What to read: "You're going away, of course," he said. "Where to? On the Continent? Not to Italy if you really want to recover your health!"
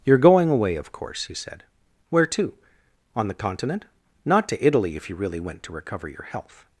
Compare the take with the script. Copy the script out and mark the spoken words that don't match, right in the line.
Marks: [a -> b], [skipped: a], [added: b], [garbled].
"You're going away, of course," he said. "Where to? On the Continent? Not to Italy if you really [want -> went] to recover your health!"